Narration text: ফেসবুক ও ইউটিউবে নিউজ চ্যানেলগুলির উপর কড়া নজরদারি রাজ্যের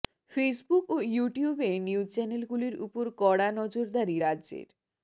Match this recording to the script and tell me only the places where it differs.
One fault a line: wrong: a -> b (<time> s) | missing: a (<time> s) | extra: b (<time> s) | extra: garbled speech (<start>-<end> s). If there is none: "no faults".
no faults